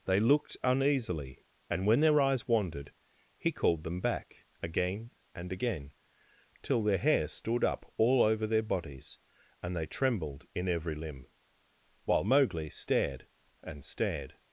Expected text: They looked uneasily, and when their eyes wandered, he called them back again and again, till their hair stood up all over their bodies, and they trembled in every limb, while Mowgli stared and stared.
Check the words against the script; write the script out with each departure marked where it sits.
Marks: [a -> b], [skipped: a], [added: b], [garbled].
They looked uneasily, and when their eyes wandered, he called them back again and again, till their hair stood up all over their bodies, and they trembled in every limb, while Mowgli stared and stared.